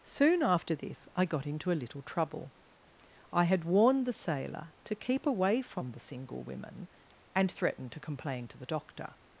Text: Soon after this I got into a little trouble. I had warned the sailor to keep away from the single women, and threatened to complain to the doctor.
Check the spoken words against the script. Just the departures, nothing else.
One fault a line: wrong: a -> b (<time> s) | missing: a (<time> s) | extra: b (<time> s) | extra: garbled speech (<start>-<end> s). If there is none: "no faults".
no faults